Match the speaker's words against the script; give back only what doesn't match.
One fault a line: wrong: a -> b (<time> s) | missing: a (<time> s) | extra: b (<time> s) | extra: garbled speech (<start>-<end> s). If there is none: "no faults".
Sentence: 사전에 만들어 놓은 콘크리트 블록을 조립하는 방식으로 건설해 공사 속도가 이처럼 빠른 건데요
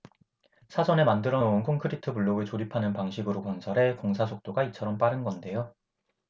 no faults